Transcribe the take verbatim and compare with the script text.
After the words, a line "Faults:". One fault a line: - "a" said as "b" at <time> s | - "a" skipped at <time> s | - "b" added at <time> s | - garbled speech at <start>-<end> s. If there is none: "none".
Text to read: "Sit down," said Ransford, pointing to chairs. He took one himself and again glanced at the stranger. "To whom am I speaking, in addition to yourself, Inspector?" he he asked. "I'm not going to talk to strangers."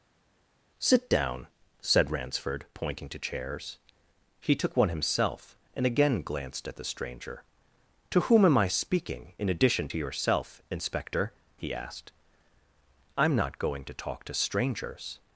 "Sit down," said Ransford, pointing to chairs. He took one himself and again glanced at the stranger. "To whom am I speaking, in addition to yourself, Inspector?" he asked. "I'm not going to talk to strangers."
Faults:
- "he" skipped at 11.7 s